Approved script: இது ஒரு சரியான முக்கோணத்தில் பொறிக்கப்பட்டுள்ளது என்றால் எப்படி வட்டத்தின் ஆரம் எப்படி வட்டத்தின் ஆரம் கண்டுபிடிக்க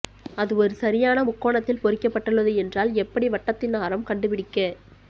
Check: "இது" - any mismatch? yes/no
yes